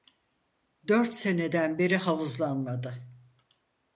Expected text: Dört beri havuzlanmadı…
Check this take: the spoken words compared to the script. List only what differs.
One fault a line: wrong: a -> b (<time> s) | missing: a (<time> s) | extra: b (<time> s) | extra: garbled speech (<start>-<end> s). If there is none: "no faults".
extra: seneden (1.1 s)